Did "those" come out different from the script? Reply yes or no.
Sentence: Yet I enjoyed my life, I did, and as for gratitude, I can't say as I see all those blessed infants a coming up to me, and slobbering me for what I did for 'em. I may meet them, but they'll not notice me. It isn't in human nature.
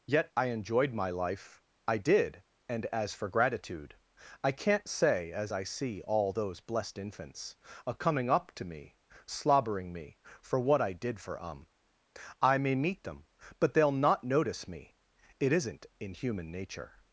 no